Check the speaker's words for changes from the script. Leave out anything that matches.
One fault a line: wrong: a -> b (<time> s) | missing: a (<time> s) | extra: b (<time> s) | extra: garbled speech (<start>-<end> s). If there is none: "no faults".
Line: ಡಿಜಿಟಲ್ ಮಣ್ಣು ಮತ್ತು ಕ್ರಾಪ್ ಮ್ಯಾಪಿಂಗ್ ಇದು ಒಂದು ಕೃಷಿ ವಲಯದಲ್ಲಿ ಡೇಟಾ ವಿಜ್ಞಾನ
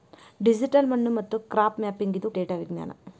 missing: ಒಂದು ಕೃಷಿ ವಲಯದಲ್ಲಿ (2.3 s)